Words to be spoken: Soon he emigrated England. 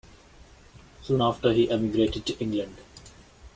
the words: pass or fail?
fail